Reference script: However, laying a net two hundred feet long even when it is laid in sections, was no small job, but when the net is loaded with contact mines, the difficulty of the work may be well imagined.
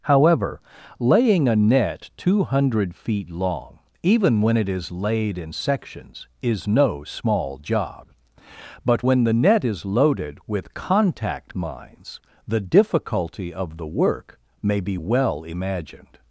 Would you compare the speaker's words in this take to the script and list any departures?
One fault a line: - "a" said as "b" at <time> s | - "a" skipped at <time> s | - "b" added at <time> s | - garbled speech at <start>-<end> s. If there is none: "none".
- "was" said as "is" at 6.4 s